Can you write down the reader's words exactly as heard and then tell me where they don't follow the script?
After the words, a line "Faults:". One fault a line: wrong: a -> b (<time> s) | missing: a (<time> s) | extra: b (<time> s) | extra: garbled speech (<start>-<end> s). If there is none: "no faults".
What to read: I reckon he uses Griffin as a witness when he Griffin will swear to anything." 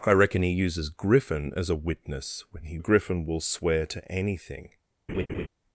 I reckon he uses Griffin as a witness when he Griffin will swear to anything."
Faults:
no faults